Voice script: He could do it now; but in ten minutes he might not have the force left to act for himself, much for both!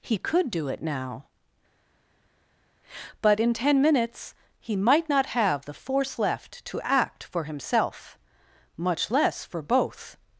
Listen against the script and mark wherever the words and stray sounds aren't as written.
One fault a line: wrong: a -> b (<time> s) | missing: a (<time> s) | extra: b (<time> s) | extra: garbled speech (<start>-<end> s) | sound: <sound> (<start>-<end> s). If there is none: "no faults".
extra: less (9.1 s)